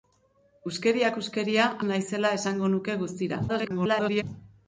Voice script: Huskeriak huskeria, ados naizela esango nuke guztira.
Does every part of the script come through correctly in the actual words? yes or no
no